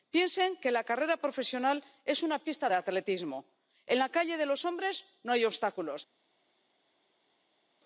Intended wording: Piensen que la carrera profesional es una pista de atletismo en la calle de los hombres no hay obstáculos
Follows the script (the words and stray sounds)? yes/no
yes